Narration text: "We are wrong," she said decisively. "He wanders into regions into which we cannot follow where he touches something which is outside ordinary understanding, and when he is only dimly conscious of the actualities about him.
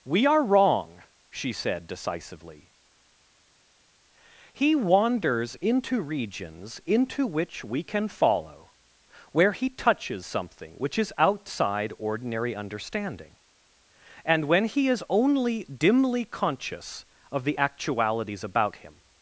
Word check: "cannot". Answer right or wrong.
wrong